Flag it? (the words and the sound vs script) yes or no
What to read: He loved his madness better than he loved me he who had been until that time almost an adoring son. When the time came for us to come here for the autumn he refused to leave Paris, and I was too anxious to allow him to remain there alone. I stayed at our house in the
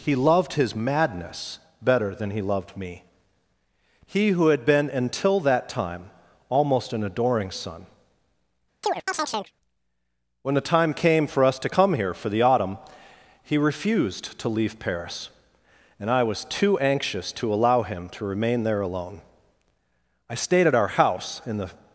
yes